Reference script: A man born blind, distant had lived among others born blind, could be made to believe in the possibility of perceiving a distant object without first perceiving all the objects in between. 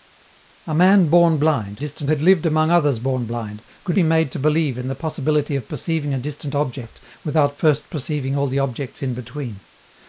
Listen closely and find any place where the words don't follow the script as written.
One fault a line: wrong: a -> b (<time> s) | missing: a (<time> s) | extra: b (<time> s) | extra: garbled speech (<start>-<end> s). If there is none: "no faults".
no faults